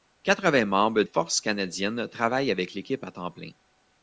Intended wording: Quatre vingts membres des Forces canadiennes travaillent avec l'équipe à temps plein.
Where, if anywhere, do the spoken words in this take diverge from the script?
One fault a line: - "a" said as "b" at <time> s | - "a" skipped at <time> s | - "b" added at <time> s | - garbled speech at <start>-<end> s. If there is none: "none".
- "des" skipped at 1.0 s